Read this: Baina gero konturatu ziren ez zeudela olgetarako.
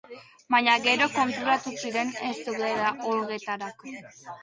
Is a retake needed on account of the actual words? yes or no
no